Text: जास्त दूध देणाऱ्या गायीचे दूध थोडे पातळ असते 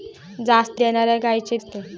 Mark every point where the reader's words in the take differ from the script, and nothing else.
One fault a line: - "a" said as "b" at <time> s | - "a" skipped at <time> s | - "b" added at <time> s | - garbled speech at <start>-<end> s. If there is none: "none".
- "दूध" skipped at 0.8 s
- "दूध थोडे पातळ" skipped at 1.6 s